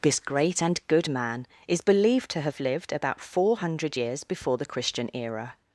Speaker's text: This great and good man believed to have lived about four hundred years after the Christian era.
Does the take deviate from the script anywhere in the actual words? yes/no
yes